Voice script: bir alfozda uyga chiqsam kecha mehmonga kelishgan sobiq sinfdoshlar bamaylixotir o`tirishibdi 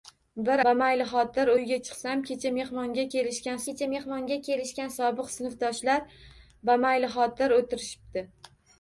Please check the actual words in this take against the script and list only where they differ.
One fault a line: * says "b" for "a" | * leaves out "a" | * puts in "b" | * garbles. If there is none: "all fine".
* says "bamaylixotir" for "alfozda"
* puts in "kecha mehmonga kelishgan"